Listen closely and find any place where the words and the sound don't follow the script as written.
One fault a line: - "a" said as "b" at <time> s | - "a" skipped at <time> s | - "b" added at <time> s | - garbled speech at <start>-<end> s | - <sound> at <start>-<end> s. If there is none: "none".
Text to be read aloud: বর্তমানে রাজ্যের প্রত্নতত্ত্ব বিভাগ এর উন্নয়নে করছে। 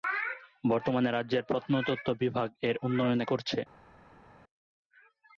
none